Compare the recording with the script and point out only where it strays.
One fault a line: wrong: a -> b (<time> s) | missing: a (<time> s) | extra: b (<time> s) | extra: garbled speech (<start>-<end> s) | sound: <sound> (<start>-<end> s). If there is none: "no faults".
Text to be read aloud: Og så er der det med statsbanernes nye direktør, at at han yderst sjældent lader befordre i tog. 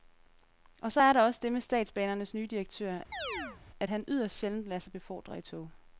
extra: også (1.2 s)
sound: chirp (3.1-3.6 s)
missing: at (3.9 s)
extra: sig (4.8 s)